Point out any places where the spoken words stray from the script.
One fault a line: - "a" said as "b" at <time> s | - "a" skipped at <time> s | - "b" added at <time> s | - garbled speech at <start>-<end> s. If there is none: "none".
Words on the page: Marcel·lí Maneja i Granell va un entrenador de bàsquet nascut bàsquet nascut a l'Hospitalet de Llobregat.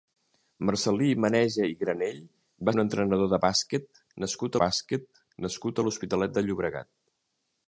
none